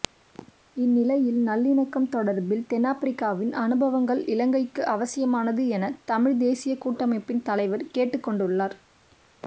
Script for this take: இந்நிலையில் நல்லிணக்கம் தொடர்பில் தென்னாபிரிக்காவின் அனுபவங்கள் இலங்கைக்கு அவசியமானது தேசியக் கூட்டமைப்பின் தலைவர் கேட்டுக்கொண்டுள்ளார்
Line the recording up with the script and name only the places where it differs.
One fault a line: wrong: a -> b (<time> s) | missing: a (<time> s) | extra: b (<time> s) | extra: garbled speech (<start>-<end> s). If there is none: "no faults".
extra: என தமிழ்த் (5.7 s)